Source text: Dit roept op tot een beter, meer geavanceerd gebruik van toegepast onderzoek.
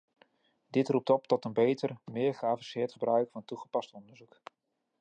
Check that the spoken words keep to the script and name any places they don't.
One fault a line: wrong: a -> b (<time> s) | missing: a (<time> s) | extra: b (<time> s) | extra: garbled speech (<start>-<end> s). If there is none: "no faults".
no faults